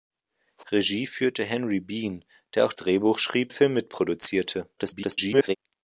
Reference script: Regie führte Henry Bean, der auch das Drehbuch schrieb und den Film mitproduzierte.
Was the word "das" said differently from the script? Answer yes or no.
yes